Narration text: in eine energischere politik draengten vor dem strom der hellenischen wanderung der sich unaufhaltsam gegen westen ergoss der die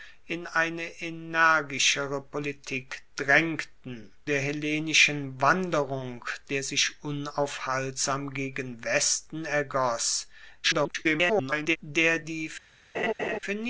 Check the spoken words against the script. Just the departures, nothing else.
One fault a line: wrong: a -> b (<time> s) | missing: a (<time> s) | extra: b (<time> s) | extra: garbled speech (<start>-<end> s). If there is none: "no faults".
missing: vor dem strom (4.1 s)
extra: garbled speech (10.6-11.8 s)